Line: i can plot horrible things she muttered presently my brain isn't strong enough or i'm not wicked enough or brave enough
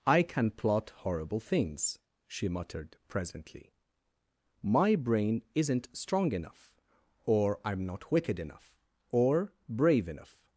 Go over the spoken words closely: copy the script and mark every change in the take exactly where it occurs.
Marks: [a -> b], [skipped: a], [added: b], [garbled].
i can plot horrible things she muttered presently my brain isn't strong enough or i'm not wicked enough or brave enough